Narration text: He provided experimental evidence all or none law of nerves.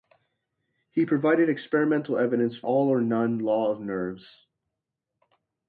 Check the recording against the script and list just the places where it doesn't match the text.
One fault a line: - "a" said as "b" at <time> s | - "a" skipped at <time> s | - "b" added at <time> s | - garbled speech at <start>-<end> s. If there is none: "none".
none